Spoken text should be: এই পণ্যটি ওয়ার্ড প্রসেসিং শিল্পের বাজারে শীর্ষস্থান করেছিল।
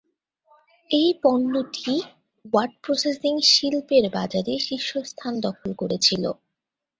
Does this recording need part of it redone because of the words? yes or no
yes